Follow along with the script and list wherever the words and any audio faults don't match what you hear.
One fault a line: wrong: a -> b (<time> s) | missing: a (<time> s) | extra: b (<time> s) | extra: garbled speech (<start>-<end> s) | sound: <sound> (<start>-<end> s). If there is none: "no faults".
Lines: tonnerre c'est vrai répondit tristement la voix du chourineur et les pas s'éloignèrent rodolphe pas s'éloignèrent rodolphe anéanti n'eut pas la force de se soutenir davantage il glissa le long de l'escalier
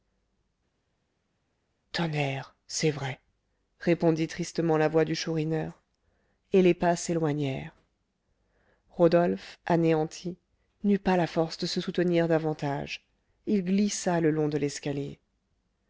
missing: pas s'éloignèrent rodolphe (9.6 s)